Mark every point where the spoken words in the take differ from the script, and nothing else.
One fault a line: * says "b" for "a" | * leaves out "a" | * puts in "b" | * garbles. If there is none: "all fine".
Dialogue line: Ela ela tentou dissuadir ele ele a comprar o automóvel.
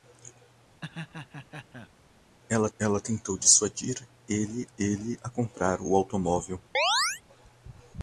all fine